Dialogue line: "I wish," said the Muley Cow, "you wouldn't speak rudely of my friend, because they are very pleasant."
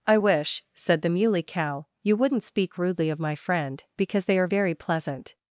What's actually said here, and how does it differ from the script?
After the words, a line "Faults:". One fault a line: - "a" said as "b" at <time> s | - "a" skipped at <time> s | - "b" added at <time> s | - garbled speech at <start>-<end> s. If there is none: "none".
"I wish," said the Muley Cow, "you wouldn't speak rudely of my friend, because they are very pleasant."
Faults:
none